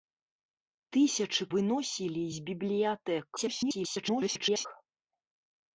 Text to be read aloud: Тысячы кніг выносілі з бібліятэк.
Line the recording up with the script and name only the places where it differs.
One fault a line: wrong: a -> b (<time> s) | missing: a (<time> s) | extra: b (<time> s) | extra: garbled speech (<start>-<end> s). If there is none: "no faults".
missing: кніг (1.4 s)
extra: garbled speech (3.4-4.7 s)